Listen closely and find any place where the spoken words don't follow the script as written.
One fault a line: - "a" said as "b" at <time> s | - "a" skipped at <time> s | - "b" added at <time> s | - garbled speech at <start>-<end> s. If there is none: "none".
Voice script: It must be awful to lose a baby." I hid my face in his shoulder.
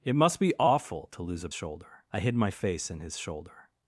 - "baby" said as "shoulder" at 1.5 s